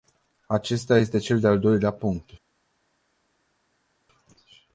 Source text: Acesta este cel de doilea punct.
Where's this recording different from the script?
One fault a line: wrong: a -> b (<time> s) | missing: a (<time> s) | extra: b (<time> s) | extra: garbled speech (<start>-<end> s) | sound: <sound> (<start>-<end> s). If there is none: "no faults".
extra: al (1.5 s)